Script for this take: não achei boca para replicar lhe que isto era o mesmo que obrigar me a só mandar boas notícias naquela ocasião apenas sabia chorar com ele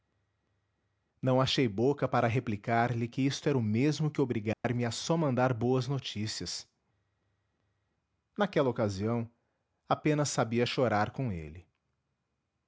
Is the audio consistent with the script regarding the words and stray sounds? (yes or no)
no